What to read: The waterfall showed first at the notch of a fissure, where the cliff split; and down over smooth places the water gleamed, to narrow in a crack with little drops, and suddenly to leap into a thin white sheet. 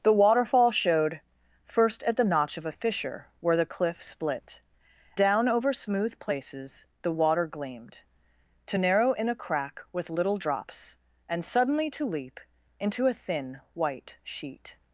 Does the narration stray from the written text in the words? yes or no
yes